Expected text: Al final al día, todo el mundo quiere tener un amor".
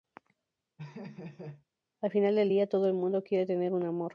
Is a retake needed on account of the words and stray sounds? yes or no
yes